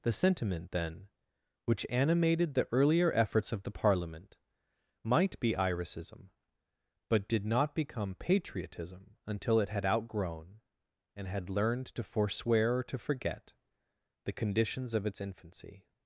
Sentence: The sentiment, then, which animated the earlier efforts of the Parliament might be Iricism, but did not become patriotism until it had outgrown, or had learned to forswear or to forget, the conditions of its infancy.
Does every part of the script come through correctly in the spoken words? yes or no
no